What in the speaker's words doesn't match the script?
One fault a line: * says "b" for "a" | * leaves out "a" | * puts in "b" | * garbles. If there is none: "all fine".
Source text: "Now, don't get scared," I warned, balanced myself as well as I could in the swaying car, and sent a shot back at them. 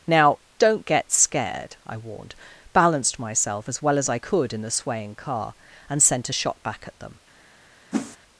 all fine